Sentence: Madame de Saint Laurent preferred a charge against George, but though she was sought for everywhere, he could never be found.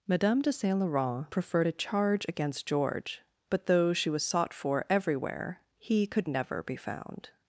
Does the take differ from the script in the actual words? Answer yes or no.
no